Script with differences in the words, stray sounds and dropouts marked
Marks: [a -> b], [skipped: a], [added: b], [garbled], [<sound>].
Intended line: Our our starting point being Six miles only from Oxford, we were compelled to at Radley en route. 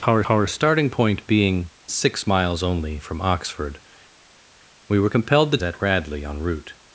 Our our starting point being Six miles only from Oxford, we were compelled to at Radley en route.